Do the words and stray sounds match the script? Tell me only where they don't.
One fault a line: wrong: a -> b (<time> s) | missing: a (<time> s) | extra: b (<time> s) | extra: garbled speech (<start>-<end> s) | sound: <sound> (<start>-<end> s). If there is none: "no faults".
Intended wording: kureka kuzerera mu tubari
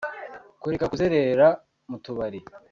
no faults